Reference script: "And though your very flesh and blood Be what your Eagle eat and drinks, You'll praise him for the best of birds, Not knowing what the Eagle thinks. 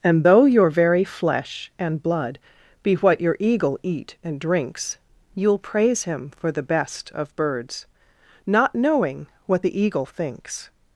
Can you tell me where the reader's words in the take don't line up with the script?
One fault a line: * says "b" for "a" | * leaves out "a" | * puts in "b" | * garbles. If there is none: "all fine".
all fine